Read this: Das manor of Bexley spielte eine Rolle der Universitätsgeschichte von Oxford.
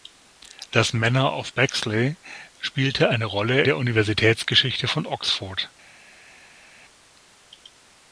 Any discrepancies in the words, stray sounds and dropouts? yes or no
no